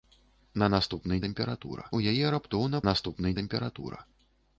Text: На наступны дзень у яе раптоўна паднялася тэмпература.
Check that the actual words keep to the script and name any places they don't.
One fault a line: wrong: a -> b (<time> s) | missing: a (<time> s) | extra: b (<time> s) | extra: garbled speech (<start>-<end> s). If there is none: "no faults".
wrong: дзень -> тэмпература (1.3 s)
wrong: паднялася -> наступны (2.9 s)